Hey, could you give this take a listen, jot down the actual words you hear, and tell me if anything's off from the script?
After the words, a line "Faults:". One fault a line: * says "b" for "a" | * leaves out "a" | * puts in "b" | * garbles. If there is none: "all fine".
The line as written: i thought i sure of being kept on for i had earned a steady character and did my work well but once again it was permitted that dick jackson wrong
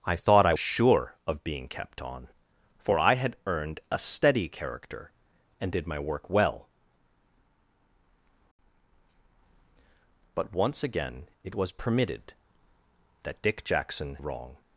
i thought i sure of being kept on for i had earned a steady character and did my work well but once again it was permitted that dick jackson wrong
Faults:
all fine